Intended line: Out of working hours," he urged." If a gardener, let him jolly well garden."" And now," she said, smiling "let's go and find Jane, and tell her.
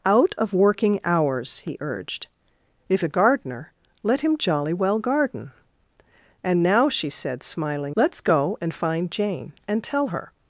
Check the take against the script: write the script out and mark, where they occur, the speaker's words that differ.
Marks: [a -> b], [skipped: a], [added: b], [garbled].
Out of working hours," he urged." If a gardener, let him jolly well garden."" And now," she said, smiling "let's go and find Jane, and tell her.